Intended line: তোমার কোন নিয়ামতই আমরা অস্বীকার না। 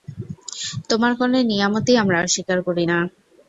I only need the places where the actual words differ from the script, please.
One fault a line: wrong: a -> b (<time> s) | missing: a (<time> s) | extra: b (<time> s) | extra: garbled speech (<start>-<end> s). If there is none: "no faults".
extra: করি (2.7 s)